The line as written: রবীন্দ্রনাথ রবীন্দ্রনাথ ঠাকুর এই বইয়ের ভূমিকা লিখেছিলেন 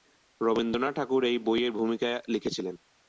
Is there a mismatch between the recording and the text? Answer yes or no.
yes